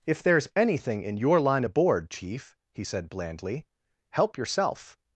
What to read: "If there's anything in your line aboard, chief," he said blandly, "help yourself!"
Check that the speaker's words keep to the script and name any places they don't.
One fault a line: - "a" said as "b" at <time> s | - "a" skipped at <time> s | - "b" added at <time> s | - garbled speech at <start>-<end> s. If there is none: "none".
none